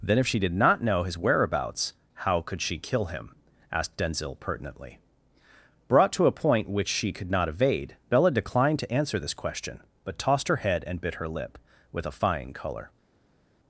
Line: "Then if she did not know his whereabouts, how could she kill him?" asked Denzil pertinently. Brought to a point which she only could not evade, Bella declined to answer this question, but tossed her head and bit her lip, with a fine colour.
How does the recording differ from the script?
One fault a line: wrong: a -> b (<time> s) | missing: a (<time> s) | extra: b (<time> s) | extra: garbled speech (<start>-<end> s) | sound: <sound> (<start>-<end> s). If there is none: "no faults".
missing: only (7.1 s)